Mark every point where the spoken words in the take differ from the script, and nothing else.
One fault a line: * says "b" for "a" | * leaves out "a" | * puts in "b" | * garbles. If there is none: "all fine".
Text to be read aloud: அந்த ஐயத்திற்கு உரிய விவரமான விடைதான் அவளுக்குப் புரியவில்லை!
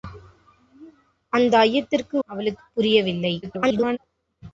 * leaves out "உரிய விவரமான விடைதான்"
* garbles